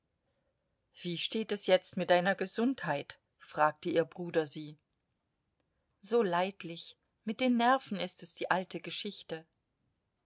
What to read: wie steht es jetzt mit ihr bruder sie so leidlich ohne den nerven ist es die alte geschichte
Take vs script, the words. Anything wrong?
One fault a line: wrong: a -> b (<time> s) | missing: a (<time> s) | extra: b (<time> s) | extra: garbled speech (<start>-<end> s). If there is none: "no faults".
extra: deiner gesundheit fragte (2.1 s)
wrong: ohne -> mit (7.2 s)